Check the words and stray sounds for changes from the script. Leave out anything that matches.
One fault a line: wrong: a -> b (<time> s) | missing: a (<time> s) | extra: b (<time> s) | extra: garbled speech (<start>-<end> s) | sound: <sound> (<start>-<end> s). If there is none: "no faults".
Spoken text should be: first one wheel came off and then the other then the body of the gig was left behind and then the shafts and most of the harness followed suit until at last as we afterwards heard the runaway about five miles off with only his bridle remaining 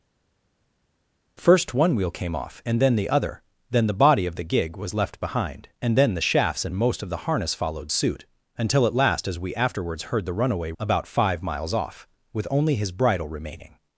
no faults